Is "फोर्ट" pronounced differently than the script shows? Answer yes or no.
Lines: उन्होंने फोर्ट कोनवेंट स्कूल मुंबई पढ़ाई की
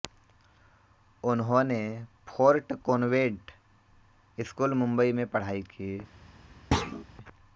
no